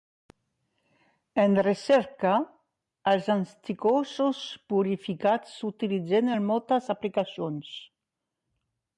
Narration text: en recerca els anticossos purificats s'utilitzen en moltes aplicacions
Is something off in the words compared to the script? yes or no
no